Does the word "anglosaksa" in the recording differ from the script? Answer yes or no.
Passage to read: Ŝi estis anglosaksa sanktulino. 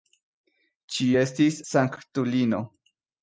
yes